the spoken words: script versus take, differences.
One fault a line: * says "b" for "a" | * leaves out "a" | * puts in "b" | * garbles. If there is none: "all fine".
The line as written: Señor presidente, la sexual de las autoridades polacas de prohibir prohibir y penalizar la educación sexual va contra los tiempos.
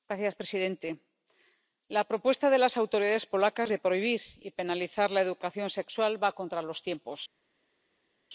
* says "propuesta" for "sexual"
* leaves out "prohibir"